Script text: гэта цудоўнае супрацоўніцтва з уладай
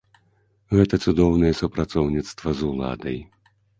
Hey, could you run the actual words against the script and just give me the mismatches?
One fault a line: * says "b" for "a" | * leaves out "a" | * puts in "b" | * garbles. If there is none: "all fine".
all fine